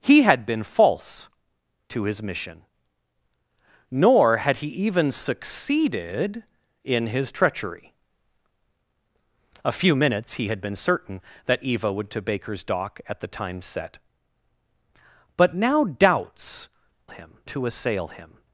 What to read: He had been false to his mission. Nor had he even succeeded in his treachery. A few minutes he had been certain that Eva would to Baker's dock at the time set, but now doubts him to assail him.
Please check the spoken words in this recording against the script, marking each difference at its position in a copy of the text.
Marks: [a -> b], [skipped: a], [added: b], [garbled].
He had been false to his mission. Nor had he even succeeded in his treachery. A few minutes he had been certain that Eva would to Baker's dock at the time set, but now doubts him to assail him.